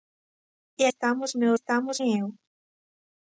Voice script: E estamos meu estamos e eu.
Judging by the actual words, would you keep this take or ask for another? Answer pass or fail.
pass